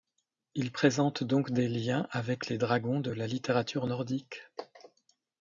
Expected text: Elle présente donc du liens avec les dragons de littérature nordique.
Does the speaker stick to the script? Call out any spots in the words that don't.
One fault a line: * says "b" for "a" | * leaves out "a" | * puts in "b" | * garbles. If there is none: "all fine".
* says "Il" for "Elle"
* says "des" for "du"
* puts in "la"